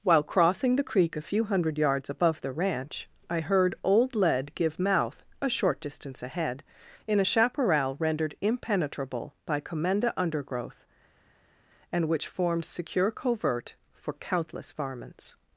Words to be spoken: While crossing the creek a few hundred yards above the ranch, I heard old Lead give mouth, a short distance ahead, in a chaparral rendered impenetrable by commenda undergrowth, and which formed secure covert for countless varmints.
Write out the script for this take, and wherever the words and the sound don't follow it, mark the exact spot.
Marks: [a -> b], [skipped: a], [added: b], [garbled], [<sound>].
While crossing the creek a few hundred yards above the ranch, I heard old Lead give mouth, a short distance ahead, in a chaparral rendered impenetrable by commenda undergrowth, and which formed secure covert for countless varmints.